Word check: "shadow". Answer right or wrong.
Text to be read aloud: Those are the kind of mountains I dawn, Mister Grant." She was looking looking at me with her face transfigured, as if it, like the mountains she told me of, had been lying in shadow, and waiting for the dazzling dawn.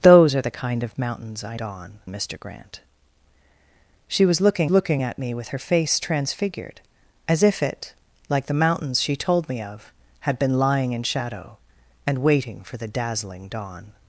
right